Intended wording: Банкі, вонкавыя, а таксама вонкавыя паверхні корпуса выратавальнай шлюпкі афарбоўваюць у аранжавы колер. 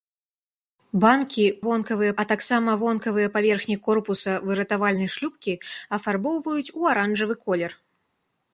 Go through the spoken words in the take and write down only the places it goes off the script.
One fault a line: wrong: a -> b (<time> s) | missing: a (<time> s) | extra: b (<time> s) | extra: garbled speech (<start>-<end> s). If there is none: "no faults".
no faults